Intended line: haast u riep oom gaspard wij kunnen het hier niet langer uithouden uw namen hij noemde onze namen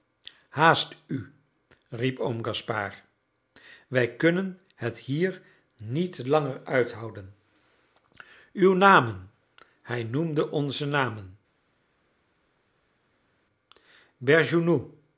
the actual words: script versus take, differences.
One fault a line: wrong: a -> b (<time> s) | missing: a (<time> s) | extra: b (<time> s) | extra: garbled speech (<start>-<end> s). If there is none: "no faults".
no faults